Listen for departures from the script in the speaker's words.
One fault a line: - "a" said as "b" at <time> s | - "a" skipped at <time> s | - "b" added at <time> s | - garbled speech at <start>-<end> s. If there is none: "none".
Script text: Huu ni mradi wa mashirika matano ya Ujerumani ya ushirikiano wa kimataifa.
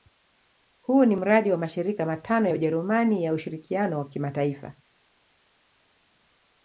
none